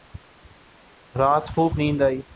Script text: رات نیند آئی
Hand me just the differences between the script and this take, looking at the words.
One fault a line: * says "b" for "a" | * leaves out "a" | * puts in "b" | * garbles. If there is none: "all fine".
* puts in "خوب"